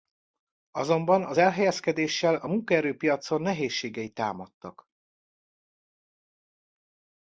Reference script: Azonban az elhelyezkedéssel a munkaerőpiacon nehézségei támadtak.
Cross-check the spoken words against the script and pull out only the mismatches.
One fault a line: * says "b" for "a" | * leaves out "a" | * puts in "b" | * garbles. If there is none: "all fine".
all fine